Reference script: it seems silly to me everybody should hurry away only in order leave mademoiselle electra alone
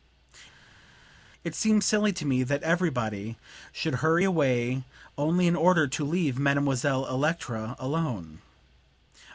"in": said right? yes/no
yes